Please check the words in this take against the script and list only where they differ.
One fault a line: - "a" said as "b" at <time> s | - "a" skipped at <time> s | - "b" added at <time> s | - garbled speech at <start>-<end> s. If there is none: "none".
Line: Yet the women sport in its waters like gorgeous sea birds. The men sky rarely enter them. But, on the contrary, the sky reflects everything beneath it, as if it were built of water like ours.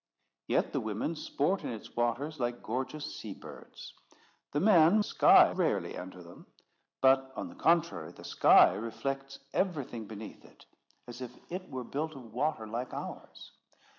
none